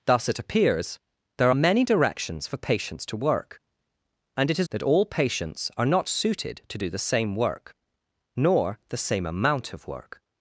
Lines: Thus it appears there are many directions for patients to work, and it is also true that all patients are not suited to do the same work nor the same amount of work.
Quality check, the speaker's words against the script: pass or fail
fail